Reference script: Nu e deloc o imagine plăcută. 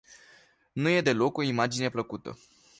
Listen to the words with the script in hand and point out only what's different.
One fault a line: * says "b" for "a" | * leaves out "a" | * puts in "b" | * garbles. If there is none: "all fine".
all fine